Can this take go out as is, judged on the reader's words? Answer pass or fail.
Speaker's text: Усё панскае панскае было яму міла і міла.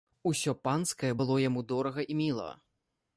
fail